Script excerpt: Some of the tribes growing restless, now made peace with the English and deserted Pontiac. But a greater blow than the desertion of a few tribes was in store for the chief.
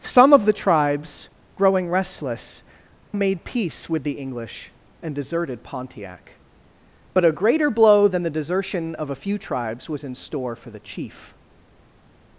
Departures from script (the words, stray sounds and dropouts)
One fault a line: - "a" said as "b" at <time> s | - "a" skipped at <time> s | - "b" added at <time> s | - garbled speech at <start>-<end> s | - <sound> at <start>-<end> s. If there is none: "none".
- "now" skipped at 2.6 s